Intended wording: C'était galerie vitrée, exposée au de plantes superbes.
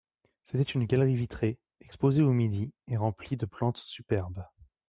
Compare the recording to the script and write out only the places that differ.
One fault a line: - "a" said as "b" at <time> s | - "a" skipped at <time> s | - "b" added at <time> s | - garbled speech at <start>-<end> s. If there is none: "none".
- "une" added at 0.6 s
- "midi et remplie" added at 2.3 s